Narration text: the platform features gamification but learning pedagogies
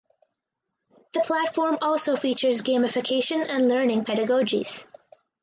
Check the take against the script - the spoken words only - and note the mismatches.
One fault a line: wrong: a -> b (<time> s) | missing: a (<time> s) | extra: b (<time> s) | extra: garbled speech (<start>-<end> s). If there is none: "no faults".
extra: also (1.8 s)
wrong: but -> and (3.5 s)